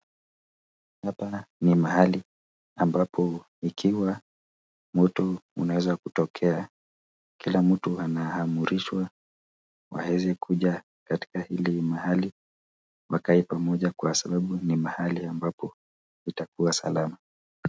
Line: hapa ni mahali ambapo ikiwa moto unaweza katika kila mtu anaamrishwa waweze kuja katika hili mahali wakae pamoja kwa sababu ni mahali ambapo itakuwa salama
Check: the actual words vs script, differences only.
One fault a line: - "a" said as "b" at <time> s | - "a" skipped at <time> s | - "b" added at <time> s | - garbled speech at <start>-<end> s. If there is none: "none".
- "katika" said as "kutokea" at 6.0 s